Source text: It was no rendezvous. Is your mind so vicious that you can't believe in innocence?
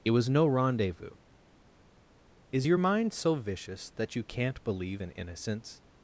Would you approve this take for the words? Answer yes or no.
yes